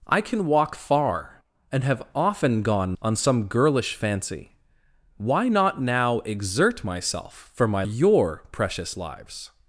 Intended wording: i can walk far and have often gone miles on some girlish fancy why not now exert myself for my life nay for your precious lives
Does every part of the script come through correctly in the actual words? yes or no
no